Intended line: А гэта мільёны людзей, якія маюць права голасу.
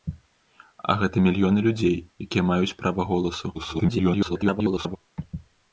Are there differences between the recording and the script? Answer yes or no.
yes